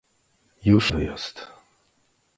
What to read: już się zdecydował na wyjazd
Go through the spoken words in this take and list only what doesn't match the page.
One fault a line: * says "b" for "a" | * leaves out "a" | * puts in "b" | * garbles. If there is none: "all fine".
* leaves out "się zdecydował na"